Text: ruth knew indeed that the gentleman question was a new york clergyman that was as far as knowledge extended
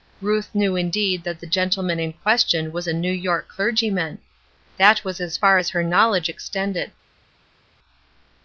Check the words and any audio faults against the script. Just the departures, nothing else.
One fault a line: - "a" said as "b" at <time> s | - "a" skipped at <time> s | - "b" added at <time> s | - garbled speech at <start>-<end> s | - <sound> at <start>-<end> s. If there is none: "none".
- "in" added at 2.0 s
- "her" added at 5.7 s